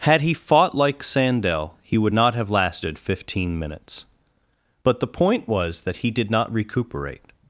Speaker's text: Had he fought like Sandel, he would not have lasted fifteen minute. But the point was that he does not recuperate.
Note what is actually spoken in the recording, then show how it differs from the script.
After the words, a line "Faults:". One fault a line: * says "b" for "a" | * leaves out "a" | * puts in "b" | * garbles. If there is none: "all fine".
Had he fought like Sandel, he would not have lasted fifteen minutes. But the point was that he did not recuperate.
Faults:
* says "minutes" for "minute"
* says "did" for "does"